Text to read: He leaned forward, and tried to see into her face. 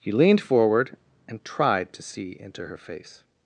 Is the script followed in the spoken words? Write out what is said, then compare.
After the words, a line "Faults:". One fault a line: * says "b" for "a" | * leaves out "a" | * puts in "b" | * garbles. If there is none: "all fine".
He leaned forward, and tried to see into her face.
Faults:
all fine